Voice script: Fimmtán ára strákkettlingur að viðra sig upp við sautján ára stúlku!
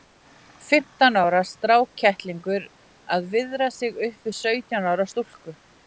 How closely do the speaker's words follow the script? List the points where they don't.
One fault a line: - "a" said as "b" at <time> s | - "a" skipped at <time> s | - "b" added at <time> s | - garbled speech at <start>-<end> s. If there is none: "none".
none